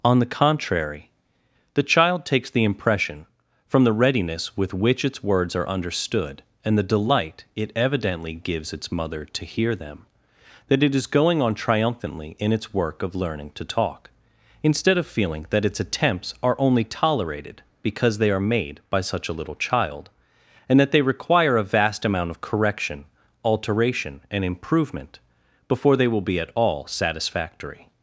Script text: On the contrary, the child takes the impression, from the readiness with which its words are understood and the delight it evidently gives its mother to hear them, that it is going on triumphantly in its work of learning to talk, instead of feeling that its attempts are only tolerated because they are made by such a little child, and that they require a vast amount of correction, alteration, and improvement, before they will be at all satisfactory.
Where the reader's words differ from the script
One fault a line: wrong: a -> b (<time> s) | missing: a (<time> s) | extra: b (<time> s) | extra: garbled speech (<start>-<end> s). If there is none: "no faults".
no faults